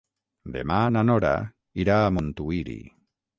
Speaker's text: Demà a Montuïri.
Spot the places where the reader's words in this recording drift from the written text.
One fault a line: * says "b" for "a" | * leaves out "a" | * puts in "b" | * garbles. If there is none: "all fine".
* puts in "na Nora irà"